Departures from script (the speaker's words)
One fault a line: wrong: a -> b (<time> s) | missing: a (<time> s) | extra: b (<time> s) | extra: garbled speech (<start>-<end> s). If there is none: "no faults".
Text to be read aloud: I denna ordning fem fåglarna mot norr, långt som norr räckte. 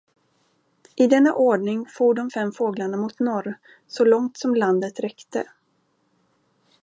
extra: for de (1.9 s)
extra: så (3.9 s)
wrong: norr -> landet (4.5 s)